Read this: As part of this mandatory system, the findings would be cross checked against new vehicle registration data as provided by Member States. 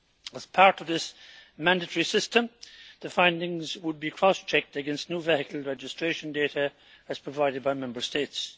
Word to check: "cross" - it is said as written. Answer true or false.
true